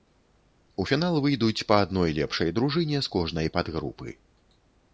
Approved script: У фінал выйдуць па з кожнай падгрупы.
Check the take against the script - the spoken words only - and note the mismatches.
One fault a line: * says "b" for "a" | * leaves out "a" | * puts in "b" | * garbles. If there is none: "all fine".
* puts in "адной лепшай дружыне"